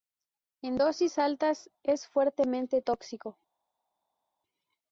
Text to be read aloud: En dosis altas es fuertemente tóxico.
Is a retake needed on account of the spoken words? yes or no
no